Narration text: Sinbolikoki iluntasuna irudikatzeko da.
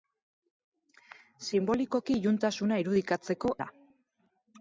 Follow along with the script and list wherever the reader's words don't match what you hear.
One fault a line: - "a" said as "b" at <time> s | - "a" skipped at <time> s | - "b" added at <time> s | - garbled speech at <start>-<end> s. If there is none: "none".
none